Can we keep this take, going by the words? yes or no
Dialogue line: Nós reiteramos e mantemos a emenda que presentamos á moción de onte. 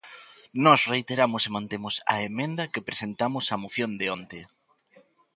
yes